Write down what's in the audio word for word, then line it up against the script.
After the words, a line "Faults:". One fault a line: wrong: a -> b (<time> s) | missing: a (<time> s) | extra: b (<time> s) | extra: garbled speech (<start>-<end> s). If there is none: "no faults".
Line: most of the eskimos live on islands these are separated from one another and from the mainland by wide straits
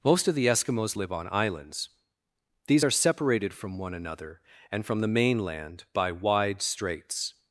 most of the eskimos live on islands these are separated from one another and from the mainland by wide straits
Faults:
no faults